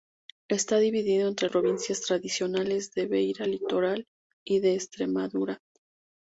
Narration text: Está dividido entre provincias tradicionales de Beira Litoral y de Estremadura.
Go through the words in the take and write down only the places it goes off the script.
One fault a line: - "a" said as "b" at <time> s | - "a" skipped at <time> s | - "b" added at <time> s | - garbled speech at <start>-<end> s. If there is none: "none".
none